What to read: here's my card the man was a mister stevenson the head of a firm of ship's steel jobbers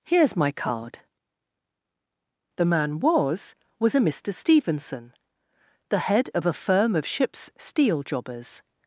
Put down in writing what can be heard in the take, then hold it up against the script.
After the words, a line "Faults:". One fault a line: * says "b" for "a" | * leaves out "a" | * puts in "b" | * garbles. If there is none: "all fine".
here's my card the man was was a mister stevenson the head of a firm of ship's steel jobbers
Faults:
* puts in "was"